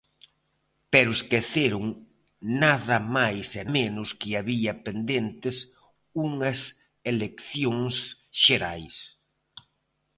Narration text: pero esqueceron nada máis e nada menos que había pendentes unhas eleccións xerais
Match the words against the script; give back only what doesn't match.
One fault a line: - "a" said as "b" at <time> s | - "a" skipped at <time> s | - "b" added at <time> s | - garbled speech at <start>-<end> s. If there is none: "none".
- "nada" skipped at 3.6 s